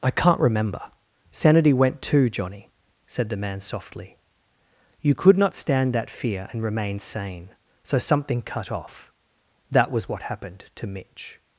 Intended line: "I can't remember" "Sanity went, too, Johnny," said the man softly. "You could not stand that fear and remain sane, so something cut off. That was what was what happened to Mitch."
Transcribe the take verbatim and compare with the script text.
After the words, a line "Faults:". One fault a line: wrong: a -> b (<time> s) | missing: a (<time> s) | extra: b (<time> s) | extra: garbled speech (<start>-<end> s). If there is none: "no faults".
"I can't remember" "Sanity went, too, Johnny," said the man softly. "You could not stand that fear and remain sane, so something cut off. That was what happened to Mitch."
Faults:
missing: was what (10.2 s)